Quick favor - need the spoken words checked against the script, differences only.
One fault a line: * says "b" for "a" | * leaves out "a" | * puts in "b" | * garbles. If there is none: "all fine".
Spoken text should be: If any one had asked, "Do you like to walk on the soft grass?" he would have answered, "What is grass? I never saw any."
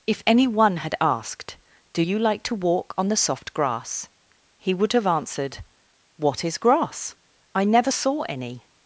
all fine